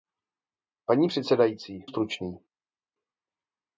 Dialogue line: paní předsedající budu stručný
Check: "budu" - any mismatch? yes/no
yes